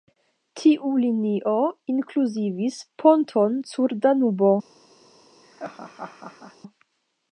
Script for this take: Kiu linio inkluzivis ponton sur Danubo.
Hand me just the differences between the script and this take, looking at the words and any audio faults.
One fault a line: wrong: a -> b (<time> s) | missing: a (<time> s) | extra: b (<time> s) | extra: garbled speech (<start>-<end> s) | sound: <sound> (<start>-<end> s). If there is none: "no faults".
wrong: Kiu -> Tiu (0.6 s)
sound: laugh (5.4-6.6 s)